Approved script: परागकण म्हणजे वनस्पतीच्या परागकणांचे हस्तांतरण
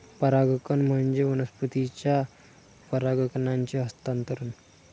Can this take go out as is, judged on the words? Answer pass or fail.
pass